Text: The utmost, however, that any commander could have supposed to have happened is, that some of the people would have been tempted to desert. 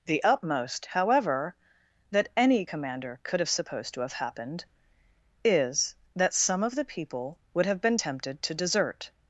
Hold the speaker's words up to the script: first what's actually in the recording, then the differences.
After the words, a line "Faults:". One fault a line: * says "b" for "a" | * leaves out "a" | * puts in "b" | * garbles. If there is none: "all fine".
The utmost, however, that any commander could have supposed to have happened is, that some of the people would have been tempted to desert.
Faults:
all fine